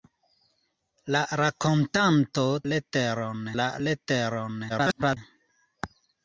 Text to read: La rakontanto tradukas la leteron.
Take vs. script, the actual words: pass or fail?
fail